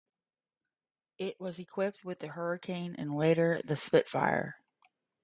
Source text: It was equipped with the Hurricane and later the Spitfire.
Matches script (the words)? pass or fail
pass